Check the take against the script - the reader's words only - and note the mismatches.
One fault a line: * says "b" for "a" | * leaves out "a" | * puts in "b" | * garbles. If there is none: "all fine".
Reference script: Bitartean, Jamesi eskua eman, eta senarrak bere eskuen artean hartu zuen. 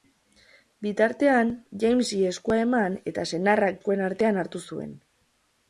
* leaves out "bere"